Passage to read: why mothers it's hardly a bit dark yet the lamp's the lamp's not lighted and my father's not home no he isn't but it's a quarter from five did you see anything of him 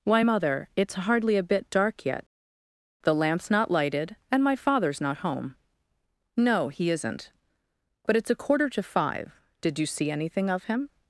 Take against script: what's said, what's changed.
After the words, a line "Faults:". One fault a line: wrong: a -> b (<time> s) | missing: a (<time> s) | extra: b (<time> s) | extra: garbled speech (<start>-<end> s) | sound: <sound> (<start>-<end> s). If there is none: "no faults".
why mother it's hardly a bit dark yet the lamp's not lighted and my father's not home no he isn't but it's a quarter to five did you see anything of him
Faults:
wrong: mothers -> mother (0.2 s)
missing: the lamp's (3.5 s)
wrong: from -> to (8.7 s)